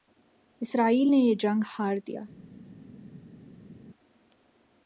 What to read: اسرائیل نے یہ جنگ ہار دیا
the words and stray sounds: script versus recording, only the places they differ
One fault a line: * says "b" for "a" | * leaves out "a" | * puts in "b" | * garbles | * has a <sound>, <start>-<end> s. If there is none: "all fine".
all fine